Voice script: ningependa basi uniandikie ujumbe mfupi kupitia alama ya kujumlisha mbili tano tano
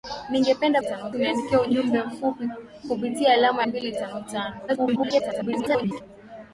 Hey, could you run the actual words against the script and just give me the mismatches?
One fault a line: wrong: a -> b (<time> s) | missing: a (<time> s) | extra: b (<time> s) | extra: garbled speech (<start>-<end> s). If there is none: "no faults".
wrong: basi -> tano (0.8 s)
missing: ya kujumlisha (3.6 s)
extra: garbled speech (4.7-6.0 s)